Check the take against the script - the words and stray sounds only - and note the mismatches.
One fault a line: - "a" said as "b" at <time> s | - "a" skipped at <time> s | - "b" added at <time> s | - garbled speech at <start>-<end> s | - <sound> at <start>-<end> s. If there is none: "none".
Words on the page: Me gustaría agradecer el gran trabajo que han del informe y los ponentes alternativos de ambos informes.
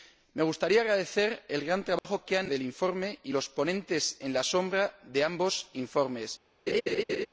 - dropout at 2.0-2.0 s
- laugh at 6.7-7.3 s